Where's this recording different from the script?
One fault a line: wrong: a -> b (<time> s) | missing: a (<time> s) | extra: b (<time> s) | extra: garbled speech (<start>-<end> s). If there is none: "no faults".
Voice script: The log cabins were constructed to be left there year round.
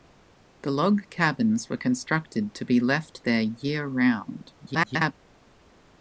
extra: garbled speech (4.6-5.1 s)